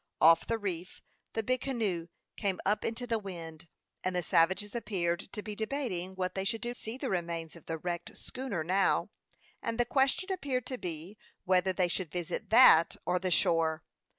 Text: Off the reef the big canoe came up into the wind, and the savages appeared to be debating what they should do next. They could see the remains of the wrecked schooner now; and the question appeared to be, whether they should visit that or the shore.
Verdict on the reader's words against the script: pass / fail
fail